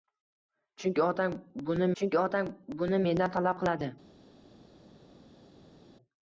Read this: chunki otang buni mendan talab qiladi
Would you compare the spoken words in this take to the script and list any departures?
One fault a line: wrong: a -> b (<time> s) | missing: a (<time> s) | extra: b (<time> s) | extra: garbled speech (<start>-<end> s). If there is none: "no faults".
extra: chunki otang buni (2.0 s)